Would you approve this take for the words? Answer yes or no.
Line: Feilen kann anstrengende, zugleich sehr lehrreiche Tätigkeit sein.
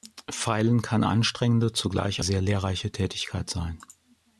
yes